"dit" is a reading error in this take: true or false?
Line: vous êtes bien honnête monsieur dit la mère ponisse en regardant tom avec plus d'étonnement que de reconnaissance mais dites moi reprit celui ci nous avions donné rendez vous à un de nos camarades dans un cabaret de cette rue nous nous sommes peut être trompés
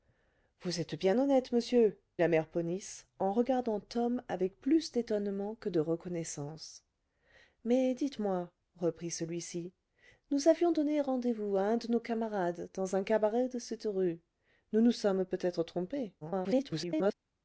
true